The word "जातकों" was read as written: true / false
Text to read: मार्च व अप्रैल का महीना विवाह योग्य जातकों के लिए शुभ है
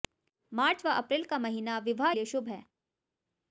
false